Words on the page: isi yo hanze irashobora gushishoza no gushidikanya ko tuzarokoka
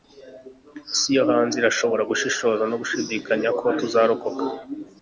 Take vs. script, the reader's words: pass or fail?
pass